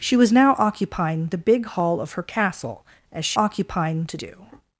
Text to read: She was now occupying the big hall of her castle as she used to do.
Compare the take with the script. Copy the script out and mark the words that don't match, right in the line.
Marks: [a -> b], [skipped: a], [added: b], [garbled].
She was now occupying the big hall of her castle as she [used -> occupying] to do.